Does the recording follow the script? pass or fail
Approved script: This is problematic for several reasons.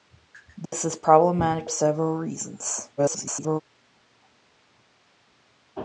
fail